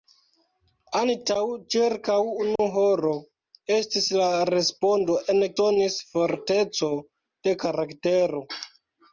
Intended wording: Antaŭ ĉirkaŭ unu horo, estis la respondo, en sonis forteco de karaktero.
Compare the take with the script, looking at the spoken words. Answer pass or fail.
pass